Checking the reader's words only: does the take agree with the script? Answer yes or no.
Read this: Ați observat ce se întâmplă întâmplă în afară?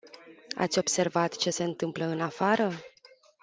no